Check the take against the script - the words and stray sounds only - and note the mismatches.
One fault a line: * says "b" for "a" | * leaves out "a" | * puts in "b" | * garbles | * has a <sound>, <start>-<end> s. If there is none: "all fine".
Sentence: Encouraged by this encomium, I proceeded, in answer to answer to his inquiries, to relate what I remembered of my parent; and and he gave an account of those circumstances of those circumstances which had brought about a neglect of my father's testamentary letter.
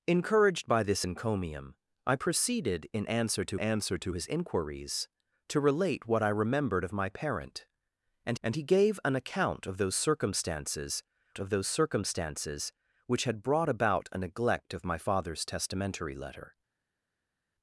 all fine